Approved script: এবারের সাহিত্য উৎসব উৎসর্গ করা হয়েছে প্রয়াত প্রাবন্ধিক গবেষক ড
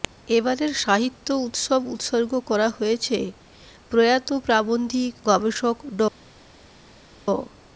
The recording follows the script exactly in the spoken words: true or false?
true